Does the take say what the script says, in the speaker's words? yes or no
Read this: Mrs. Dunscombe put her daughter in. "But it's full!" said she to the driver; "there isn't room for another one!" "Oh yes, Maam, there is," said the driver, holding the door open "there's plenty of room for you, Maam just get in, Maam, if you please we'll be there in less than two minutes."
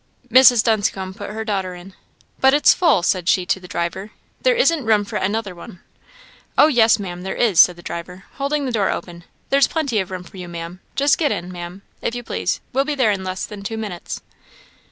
yes